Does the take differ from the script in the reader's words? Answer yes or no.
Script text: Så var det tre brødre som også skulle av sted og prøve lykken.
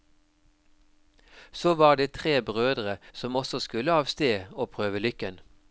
no